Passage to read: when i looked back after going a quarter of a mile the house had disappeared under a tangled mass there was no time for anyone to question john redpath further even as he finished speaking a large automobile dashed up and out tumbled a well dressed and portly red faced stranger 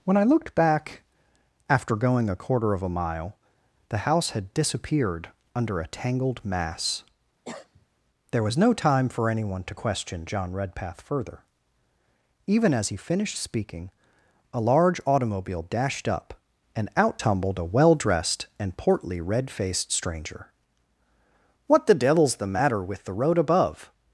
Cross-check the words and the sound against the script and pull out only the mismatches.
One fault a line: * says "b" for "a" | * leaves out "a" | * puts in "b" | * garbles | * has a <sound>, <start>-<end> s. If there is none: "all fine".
* has a cough, 7.4-7.9 s
* puts in "what the devil's the matter with the road above"